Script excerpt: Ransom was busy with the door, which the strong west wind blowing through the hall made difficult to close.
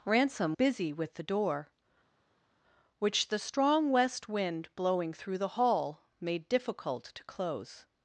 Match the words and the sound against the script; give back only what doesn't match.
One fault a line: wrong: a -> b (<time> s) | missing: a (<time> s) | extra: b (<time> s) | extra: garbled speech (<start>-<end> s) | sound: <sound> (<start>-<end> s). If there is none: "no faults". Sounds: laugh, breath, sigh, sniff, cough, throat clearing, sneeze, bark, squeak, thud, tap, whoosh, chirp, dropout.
missing: was (0.6 s)